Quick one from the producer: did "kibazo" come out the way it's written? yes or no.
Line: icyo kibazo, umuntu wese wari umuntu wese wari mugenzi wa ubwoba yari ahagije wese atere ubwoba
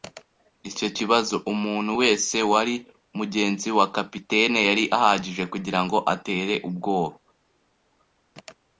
yes